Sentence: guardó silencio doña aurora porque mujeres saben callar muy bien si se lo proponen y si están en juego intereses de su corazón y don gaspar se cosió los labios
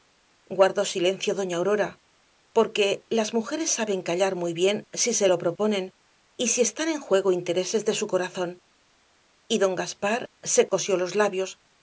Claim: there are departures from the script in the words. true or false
true